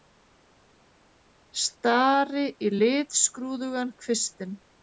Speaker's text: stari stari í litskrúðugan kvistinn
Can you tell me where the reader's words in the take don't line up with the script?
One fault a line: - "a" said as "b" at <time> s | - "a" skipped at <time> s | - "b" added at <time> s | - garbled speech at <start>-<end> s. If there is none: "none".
- "stari" skipped at 2.5 s